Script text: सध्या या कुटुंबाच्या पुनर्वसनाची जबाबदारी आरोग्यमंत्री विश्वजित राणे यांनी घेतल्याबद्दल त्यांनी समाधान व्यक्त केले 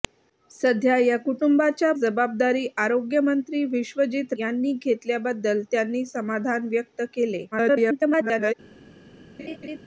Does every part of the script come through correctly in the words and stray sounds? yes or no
no